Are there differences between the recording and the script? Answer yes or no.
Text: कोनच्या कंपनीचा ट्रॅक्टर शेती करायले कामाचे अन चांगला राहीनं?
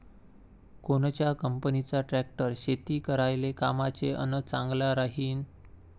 no